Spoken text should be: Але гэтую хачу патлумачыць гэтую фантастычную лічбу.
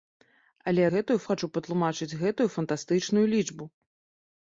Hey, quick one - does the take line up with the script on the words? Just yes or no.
yes